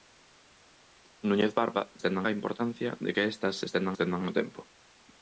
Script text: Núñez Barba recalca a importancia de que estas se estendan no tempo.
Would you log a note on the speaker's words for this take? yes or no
yes